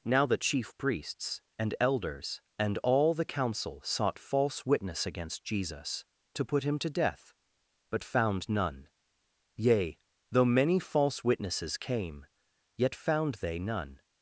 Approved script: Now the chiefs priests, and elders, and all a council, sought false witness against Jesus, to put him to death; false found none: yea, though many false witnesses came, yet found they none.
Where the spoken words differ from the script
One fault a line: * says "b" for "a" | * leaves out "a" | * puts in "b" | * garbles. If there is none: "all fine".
* says "chief" for "chiefs"
* says "the" for "a"
* says "but" for "false"